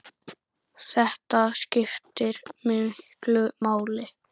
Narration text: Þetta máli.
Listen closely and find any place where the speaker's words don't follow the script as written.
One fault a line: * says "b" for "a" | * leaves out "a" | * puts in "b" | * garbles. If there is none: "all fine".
* puts in "skiptir miklu"